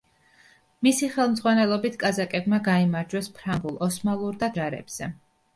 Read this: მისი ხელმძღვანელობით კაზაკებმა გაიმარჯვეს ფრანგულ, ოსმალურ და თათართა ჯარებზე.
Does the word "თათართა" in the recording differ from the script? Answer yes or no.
yes